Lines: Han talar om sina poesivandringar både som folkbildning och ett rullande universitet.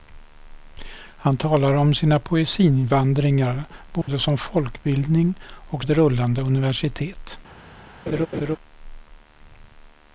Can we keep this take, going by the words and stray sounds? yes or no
no